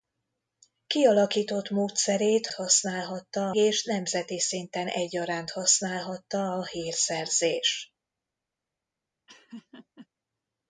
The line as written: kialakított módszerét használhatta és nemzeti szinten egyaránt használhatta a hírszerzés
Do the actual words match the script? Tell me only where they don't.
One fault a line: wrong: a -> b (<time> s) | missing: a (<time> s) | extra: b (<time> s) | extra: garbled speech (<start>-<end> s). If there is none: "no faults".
no faults